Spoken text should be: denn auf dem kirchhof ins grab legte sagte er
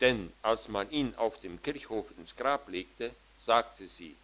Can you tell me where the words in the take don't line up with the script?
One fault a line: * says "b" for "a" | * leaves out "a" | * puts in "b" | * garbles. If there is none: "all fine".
* puts in "als man ihn"
* says "sie" for "er"